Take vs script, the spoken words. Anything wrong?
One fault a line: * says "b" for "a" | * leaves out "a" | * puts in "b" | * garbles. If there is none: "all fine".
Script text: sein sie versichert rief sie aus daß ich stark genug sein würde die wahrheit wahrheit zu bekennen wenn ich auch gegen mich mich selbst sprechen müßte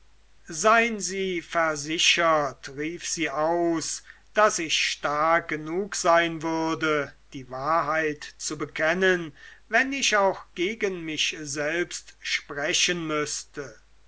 * leaves out "wahrheit"
* leaves out "mich"